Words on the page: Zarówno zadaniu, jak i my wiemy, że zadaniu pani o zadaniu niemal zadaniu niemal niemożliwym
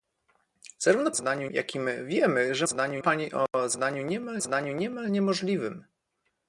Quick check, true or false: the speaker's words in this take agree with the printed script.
true